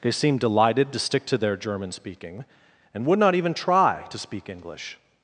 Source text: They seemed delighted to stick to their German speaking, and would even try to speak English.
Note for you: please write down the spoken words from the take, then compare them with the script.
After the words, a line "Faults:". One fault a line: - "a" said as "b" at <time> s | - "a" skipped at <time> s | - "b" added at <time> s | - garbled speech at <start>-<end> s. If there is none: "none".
They seemed delighted to stick to their German speaking, and would not even try to speak English.
Faults:
- "not" added at 3.2 s